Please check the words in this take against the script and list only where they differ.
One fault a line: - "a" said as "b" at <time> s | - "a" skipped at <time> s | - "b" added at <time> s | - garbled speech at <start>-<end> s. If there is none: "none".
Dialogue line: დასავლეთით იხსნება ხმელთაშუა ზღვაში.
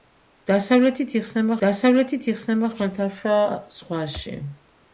- "დასავლეთით იხსნება" added at 1.6 s